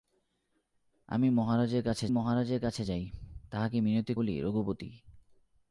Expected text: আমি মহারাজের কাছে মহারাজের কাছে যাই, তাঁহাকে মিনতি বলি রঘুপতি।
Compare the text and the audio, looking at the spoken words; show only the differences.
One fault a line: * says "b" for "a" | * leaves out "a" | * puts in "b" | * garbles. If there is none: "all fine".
all fine